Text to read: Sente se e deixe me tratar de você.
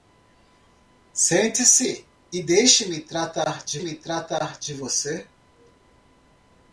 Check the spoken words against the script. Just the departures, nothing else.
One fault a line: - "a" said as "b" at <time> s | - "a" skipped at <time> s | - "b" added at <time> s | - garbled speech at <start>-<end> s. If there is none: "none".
- "me tratar de" added at 3.8 s